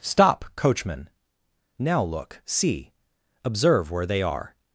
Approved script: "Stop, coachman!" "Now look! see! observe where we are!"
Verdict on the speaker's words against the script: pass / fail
fail